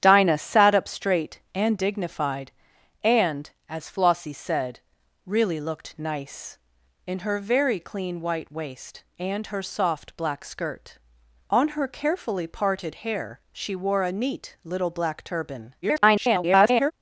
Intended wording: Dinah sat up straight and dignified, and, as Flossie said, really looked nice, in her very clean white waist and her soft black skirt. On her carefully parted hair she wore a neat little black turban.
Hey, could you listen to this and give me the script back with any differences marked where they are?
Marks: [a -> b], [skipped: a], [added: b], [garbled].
Dinah sat up straight and dignified, and, as Flossie said, really looked nice, in her very clean white waist and her soft black skirt. On her carefully parted hair she wore a neat little black turban. [garbled]